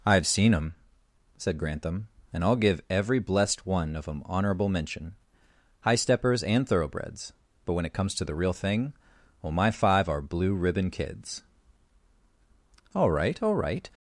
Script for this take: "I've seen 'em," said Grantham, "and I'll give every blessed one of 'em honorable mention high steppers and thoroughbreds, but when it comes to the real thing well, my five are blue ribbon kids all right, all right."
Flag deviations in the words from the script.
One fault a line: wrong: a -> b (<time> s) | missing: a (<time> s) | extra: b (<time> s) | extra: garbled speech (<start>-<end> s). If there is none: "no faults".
no faults